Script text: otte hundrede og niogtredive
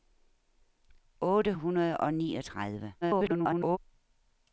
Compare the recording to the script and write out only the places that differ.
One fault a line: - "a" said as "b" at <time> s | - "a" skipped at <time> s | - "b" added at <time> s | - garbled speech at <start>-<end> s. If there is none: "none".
- garbled speech at 3.0-3.8 s